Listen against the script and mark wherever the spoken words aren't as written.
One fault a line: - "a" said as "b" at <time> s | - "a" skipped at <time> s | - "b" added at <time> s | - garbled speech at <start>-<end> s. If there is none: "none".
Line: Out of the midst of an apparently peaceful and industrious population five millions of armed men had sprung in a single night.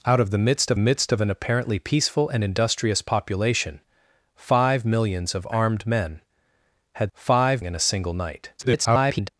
- "midst of" added at 0.8 s
- "sprung" said as "five" at 7.1 s
- garbled speech at 8.6-9.3 s